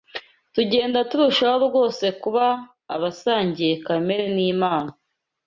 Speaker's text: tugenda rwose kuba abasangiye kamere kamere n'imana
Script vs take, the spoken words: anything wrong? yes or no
yes